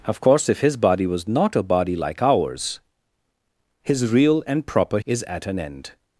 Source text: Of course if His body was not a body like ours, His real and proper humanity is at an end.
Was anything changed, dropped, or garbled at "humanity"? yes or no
yes